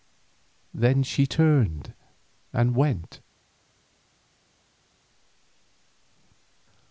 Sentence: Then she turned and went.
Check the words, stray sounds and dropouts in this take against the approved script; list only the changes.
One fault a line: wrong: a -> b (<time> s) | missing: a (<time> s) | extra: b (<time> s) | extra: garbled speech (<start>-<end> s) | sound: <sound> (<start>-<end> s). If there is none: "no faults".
no faults